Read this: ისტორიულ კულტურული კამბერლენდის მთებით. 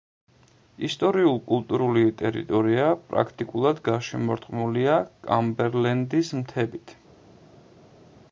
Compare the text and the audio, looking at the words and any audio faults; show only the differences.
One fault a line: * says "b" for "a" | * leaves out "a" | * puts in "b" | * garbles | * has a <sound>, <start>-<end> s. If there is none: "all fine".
* puts in "ტერიტორია პრაქტიკულად გარშემორტყმულია"